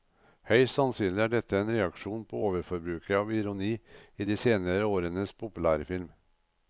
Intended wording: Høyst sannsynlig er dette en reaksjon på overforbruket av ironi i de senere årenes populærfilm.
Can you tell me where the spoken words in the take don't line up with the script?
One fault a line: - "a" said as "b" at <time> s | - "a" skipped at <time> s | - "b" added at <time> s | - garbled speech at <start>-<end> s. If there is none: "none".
none